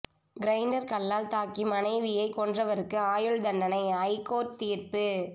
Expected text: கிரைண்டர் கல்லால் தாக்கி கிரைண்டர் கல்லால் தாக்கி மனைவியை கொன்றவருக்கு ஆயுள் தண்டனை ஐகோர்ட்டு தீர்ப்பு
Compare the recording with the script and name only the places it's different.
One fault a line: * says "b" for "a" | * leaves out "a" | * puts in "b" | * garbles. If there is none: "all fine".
* leaves out "கிரைண்டர் கல்லால் தாக்கி"